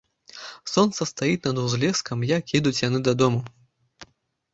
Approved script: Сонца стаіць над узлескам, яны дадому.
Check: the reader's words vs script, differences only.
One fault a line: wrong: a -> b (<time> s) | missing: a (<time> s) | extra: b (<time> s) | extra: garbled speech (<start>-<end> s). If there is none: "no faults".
extra: як едуць (2.3 s)